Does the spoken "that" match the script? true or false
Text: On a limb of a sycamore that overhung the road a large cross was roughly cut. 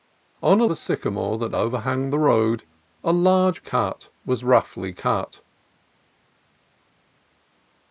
true